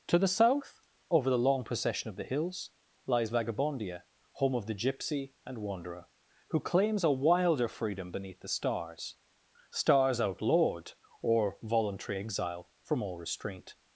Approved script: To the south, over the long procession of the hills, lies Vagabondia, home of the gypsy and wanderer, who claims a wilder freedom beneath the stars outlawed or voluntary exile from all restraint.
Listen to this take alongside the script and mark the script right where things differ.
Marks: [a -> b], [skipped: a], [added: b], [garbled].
To the south, over the long procession of the hills, lies Vagabondia, home of the gypsy and wanderer, who claims a wilder freedom beneath the stars [added: stars] outlawed or voluntary exile from all restraint.